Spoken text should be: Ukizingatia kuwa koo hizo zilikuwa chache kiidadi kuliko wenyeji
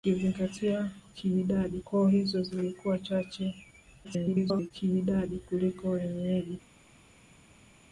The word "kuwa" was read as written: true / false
false